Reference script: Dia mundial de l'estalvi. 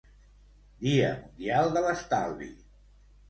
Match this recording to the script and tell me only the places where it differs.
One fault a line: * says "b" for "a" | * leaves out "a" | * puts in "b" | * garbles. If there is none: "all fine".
all fine